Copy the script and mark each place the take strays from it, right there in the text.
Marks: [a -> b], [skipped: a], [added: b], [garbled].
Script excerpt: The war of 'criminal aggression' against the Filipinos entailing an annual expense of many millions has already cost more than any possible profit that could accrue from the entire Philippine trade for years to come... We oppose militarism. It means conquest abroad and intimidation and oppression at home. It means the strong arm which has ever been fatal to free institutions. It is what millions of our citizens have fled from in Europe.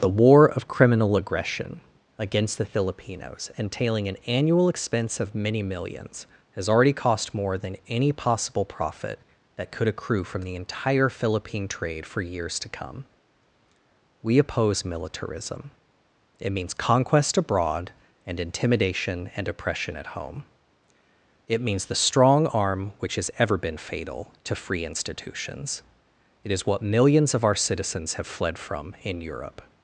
The war of 'criminal aggression' against the Filipinos entailing an annual expense of many millions has already cost more than any possible profit that could accrue from the entire Philippine trade for years to come... We oppose militarism. It means conquest abroad and intimidation and oppression at home. It means the strong arm which has ever been fatal to free institutions. It is what millions of our citizens have fled from in Europe.